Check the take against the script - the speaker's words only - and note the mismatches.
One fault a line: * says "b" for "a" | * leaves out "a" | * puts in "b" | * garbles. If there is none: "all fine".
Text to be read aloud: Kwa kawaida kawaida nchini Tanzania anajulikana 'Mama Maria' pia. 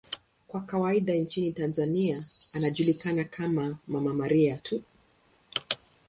* leaves out "kawaida"
* puts in "kama"
* says "tu" for "pia"